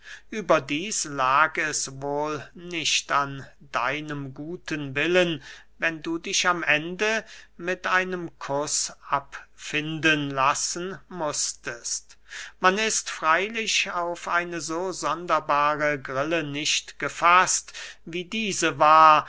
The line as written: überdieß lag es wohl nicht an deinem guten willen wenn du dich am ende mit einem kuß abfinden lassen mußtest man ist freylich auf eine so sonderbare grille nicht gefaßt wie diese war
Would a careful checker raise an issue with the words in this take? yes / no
no